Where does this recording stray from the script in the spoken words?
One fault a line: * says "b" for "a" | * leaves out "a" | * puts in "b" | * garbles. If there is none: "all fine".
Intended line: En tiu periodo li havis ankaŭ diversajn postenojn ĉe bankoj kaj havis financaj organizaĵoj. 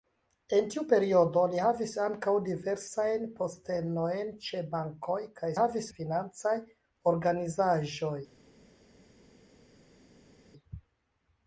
all fine